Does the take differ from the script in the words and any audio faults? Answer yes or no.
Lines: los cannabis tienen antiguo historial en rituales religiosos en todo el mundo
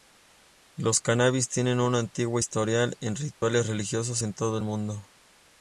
yes